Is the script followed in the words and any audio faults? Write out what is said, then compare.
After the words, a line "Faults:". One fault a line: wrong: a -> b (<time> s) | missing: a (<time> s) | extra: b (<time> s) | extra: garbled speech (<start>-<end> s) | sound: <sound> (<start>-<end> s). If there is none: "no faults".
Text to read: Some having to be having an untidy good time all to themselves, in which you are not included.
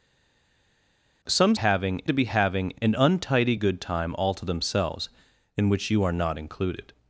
Some having to be having an untidy good time all to themselves, in which you are not included.
Faults:
no faults